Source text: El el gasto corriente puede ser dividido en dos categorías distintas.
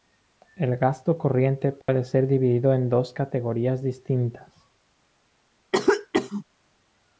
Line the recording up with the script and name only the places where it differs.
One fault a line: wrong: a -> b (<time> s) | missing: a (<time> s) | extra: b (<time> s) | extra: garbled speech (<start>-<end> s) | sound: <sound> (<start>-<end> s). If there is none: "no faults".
missing: el (0.8 s)
sound: dropout (1.8-1.9 s)
sound: cough (5.7-6.4 s)